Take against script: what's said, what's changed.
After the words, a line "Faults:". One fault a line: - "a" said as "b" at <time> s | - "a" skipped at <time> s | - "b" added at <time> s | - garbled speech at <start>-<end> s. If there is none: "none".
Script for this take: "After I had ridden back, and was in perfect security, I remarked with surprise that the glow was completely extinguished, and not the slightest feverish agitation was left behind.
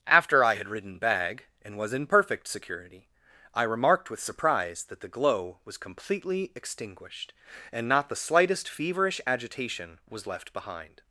"After I had ridden bag, and was in perfect security, I remarked with surprise that the glow was completely extinguished, and not the slightest feverish agitation was left behind.
Faults:
- "back" said as "bag" at 1.0 s